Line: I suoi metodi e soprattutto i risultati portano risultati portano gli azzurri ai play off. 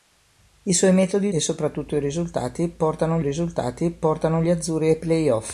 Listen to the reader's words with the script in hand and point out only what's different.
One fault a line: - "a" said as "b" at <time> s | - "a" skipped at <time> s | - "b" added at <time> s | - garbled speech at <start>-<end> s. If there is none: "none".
none